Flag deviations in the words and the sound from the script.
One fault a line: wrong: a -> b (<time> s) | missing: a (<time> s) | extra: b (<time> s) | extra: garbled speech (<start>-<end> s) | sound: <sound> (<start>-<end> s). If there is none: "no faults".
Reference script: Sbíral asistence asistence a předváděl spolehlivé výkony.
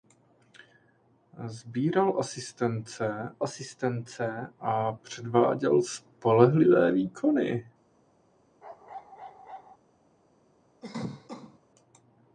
sound: bark (8.6-9.8 s)
sound: cough (10.8-11.6 s)